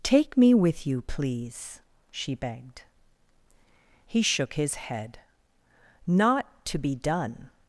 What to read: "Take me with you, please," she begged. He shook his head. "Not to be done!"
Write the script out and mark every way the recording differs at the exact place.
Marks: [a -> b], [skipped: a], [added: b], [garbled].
"Take me with you, please," she begged. He shook his head. "Not to be done!"